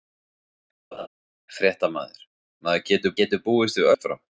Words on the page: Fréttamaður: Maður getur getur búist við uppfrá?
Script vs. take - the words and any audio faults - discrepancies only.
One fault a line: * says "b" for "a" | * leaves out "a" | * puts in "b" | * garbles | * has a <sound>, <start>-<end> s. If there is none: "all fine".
* has a laugh, 0.9-1.1 s